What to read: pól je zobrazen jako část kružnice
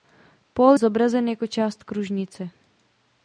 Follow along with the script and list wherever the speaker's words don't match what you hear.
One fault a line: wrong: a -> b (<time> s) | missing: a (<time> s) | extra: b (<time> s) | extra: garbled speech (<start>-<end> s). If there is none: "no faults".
missing: je (0.8 s)